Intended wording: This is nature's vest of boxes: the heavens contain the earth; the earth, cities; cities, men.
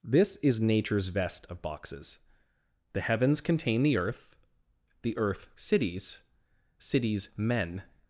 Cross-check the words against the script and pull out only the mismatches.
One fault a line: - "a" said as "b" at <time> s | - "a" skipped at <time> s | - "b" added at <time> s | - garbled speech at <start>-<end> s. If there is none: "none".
none